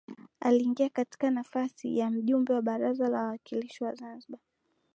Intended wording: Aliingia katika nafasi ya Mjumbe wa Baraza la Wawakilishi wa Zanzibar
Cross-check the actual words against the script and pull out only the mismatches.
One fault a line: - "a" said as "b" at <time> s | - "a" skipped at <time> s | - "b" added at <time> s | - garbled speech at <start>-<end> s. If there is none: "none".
none